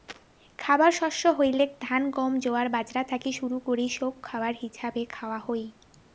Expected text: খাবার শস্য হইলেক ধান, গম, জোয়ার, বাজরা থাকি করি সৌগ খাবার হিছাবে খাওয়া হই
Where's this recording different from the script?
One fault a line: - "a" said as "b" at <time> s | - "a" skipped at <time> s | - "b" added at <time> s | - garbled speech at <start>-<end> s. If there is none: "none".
- "শুরু" added at 3.3 s